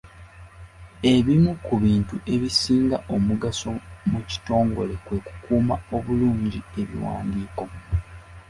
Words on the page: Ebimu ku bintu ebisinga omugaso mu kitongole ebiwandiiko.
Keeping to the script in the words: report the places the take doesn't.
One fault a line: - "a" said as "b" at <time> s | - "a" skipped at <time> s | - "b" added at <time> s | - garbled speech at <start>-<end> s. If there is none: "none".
- "kwe kukuuma obulungi" added at 5.0 s